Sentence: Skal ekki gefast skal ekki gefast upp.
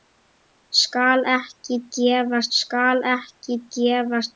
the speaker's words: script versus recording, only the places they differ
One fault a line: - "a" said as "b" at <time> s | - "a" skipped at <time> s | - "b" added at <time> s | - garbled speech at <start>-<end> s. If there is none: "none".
none